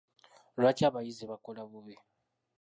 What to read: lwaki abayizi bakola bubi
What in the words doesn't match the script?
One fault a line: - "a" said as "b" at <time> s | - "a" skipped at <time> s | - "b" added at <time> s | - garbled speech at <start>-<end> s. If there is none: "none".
none